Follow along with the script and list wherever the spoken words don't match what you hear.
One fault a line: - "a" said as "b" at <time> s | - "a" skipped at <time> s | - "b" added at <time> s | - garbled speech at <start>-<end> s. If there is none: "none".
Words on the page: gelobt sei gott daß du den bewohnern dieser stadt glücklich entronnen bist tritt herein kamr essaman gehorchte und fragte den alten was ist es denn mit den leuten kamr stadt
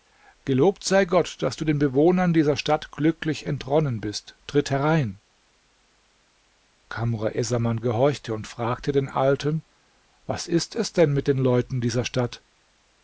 - "kamr" said as "dieser" at 11.8 s